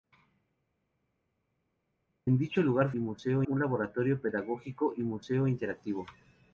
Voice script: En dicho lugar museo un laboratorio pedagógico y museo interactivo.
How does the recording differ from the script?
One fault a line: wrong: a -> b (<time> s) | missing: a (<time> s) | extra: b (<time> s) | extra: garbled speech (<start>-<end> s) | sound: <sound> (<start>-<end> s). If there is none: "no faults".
no faults